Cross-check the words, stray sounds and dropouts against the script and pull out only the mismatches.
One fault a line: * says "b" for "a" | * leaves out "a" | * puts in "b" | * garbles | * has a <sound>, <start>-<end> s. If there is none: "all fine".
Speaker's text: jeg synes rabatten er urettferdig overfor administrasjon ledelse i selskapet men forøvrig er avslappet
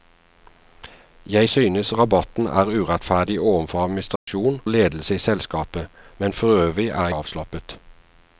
* has a dropout, 4.2-4.3 s